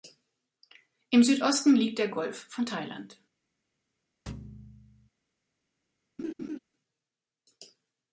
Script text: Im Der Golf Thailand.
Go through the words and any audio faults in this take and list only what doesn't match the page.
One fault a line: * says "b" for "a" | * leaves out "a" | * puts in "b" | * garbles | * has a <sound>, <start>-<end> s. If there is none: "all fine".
* puts in "Südosten liegt"
* puts in "von"
* has a thud, 4.3-5.1 s
* has a laugh, 6.2-6.6 s